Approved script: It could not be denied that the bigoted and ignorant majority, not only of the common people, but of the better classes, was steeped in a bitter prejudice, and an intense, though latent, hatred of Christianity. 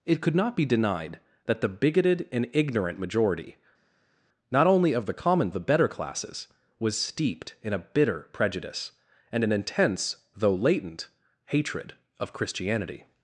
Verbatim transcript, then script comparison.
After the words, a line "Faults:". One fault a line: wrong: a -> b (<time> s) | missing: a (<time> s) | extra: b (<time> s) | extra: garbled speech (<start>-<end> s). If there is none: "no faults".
It could not be denied that the bigoted and ignorant majority, not only of the common the better classes, was steeped in a bitter prejudice, and an intense, though latent, hatred of Christianity.
Faults:
missing: people but of (5.5 s)